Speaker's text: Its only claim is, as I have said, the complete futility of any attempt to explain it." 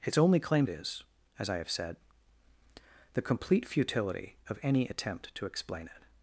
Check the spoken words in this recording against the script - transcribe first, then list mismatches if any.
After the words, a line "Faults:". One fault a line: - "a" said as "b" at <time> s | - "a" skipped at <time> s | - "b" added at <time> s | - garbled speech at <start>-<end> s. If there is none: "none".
Its only claim is, as I have said, the complete futility of any attempt to explain it."
Faults:
none